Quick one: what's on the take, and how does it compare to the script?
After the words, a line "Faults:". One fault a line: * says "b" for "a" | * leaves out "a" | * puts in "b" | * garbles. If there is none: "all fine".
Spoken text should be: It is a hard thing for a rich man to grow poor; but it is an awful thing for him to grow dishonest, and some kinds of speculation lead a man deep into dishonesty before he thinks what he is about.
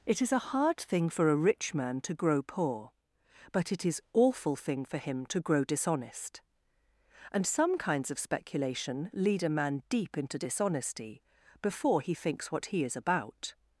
It is a hard thing for a rich man to grow poor; but it is awful thing for him to grow dishonest, and some kinds of speculation lead a man deep into dishonesty before he thinks what he is about.
Faults:
* leaves out "an"